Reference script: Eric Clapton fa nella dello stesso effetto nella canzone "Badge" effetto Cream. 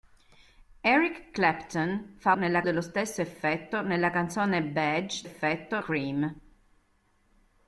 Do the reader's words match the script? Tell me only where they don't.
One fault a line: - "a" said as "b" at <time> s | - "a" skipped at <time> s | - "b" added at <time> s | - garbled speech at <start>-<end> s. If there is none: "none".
none